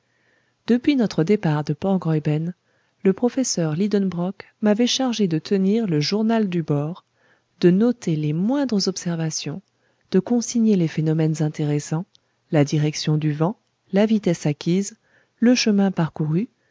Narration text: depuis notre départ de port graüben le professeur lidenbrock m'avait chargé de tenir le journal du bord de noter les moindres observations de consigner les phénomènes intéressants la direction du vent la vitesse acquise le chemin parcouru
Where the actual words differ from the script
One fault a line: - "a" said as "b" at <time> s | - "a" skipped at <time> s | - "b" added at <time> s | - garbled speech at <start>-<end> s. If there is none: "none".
none